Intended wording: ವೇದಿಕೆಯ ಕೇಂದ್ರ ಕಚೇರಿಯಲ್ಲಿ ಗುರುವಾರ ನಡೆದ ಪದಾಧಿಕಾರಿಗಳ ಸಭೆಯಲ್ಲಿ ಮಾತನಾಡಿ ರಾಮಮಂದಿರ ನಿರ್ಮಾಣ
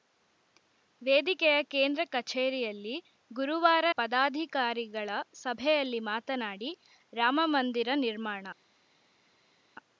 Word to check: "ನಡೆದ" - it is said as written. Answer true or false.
false